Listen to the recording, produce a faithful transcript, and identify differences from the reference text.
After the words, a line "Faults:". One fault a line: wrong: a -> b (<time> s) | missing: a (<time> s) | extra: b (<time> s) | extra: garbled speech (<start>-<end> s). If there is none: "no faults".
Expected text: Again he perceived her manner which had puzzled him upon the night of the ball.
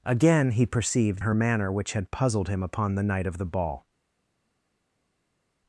Again he perceived her manner which had puzzled him upon the night of the ball.
Faults:
no faults